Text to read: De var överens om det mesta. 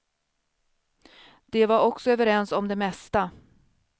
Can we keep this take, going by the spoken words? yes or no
no